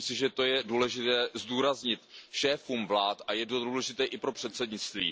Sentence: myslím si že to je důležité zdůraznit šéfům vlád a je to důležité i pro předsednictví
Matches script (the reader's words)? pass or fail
pass